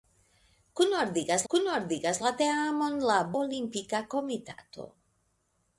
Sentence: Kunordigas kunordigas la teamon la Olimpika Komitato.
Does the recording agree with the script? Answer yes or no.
yes